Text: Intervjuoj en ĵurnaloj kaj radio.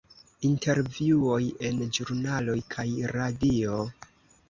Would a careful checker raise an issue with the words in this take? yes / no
no